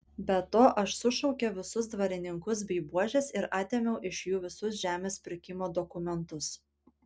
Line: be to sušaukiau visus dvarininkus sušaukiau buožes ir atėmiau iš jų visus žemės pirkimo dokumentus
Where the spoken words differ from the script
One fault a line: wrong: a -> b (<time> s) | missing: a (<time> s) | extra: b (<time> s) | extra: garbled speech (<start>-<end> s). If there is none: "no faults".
extra: aš (0.8 s)
wrong: sušaukiau -> bei (2.7 s)